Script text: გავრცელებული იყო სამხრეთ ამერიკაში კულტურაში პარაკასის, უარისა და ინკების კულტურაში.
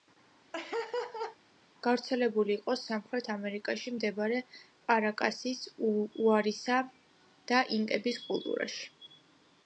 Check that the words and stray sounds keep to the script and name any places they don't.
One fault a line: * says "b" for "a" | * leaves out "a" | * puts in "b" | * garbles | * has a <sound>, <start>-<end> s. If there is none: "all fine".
* has a laugh, 0.5-1.4 s
* says "მდებარე" for "კულტურაში"